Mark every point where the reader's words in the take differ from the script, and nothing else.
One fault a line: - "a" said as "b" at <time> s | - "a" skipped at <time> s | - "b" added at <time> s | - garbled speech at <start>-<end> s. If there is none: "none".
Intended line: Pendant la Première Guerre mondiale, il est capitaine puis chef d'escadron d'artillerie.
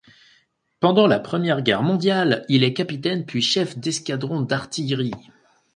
none